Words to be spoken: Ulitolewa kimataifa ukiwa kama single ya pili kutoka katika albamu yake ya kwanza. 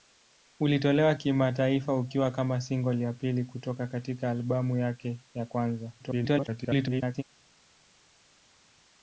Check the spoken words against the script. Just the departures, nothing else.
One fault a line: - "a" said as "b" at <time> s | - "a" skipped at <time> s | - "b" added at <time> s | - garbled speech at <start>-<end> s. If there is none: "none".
- garbled speech at 6.0-7.2 s